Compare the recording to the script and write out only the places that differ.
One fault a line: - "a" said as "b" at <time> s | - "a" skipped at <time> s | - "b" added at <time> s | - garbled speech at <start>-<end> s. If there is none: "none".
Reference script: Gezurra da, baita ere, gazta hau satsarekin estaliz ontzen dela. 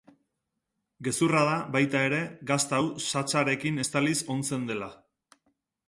none